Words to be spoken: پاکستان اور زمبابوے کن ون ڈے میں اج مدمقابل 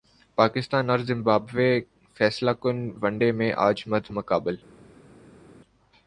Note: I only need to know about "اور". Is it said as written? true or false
true